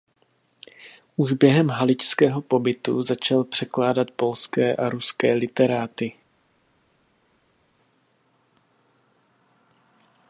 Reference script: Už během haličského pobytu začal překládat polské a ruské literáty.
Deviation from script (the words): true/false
false